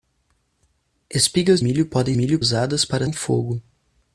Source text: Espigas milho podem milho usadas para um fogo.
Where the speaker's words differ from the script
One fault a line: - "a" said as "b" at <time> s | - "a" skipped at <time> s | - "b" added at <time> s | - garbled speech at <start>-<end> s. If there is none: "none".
none